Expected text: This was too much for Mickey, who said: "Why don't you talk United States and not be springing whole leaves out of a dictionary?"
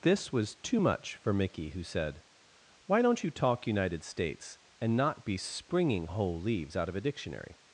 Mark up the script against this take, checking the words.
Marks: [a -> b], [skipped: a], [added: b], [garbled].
This was too much for Mickey, who said: "Why don't you talk United States and not be springing whole leaves out of a dictionary?"